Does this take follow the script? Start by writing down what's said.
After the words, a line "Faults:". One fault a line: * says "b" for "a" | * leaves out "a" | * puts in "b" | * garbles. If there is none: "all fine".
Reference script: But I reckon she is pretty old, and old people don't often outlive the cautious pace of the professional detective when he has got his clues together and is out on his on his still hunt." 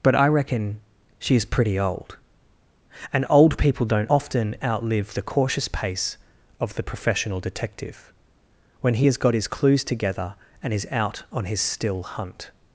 But I reckon she is pretty old, and old people don't often outlive the cautious pace of the professional detective when he has got his clues together and is out on his still hunt."
Faults:
* leaves out "on his"